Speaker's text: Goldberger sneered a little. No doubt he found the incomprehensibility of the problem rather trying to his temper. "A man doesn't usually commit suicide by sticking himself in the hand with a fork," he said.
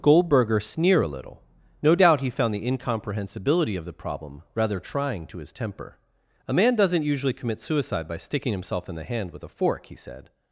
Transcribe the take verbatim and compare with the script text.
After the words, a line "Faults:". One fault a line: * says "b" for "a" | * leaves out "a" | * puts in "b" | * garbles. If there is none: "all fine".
Goldberger sneer a little. No doubt he found the incomprehensibility of the problem rather trying to his temper. "A man doesn't usually commit suicide by sticking himself in the hand with a fork," he said.
Faults:
* says "sneer" for "sneered"